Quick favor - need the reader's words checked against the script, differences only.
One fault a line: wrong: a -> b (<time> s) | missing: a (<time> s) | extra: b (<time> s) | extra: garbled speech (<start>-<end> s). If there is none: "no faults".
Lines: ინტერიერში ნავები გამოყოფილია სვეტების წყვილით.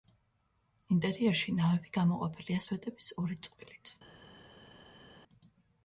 extra: ორი (3.2 s)